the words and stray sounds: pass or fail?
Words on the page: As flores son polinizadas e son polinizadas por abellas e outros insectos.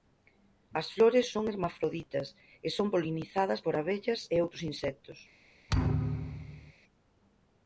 fail